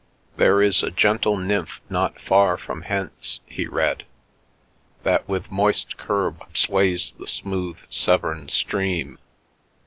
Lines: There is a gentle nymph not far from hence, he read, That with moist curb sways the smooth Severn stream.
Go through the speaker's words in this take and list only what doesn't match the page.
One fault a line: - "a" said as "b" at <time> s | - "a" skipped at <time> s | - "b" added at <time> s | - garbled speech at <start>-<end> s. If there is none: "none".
none